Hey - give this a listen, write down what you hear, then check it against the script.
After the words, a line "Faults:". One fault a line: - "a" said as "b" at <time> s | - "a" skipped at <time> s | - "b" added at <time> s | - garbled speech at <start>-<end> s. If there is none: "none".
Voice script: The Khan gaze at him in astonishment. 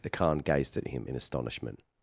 The Khan gazed at him in astonishment.
Faults:
- "gaze" said as "gazed" at 0.4 s